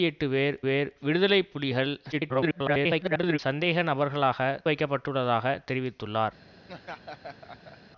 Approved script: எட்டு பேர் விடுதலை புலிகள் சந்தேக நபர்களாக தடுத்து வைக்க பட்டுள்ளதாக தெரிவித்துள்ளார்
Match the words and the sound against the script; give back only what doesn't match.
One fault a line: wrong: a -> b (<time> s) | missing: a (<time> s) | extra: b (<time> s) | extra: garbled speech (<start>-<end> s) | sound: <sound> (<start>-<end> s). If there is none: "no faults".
extra: பேர் (0.6 s)
extra: garbled speech (2.1-3.4 s)
missing: தடுத்து (4.4 s)
sound: laugh (6.6-7.8 s)